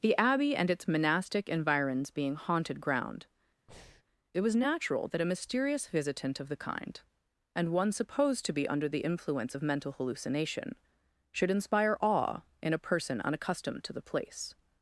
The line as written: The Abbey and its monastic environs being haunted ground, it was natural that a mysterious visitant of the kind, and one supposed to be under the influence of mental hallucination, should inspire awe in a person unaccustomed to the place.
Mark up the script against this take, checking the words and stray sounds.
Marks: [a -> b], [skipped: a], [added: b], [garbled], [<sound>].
The Abbey and its monastic environs being haunted ground, [breath] it was natural that a mysterious visitant of the kind, and one supposed to be under the influence of mental hallucination, should inspire awe in a person unaccustomed to the place.